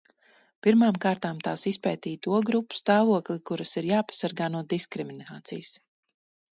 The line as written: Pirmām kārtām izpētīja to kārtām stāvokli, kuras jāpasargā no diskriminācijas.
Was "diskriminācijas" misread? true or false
false